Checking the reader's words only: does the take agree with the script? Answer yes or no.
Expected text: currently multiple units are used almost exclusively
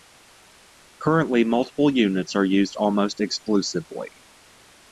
yes